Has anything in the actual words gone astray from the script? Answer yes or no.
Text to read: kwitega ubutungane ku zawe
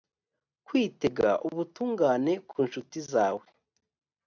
yes